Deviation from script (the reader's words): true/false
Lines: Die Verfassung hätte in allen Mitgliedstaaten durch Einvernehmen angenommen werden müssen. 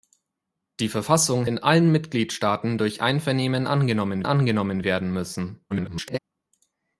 true